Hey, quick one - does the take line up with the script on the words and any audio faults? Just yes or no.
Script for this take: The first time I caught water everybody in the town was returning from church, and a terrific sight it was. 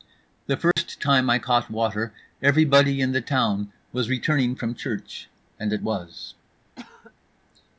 no